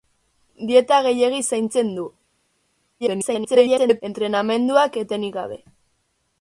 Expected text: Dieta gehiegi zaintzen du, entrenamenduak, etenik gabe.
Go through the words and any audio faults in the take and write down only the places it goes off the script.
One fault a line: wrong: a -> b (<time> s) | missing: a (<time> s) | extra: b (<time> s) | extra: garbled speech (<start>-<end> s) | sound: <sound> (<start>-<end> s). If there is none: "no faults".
extra: garbled speech (3.0-4.0 s)